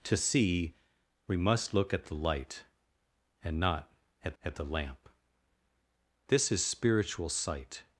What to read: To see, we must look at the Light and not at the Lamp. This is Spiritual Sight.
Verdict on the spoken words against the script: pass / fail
fail